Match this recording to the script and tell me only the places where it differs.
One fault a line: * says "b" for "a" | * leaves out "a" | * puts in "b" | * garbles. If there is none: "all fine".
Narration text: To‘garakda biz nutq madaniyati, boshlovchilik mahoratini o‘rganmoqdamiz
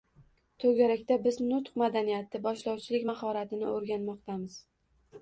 all fine